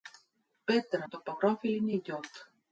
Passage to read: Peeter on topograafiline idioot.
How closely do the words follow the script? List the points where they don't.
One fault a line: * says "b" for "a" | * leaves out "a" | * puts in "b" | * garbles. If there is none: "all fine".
all fine